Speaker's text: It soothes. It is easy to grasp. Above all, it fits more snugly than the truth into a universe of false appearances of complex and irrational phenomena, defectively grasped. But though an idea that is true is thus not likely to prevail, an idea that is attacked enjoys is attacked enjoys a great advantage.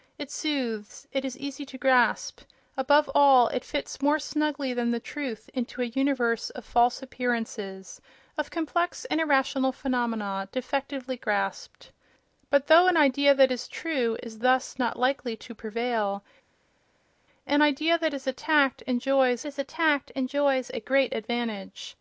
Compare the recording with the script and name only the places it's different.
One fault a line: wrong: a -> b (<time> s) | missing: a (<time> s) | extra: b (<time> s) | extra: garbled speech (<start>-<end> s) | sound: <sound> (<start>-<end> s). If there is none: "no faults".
no faults